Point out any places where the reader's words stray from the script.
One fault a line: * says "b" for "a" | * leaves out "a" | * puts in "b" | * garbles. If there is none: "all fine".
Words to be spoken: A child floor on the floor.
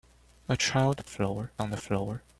all fine